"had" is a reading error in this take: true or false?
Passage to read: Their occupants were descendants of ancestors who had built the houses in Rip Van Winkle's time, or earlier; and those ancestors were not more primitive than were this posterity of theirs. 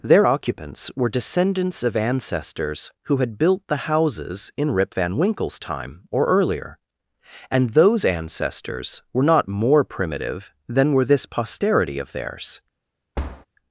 false